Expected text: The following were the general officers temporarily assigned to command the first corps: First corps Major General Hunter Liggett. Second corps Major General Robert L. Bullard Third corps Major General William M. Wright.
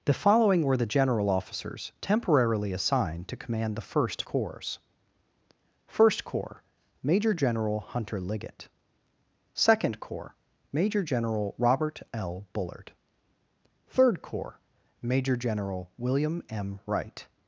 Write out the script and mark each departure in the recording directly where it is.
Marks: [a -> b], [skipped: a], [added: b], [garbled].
The following were the general officers temporarily assigned to command the first corps: First corps Major General Hunter Liggett. Second corps Major General Robert L. Bullard Third corps Major General William M. Wright.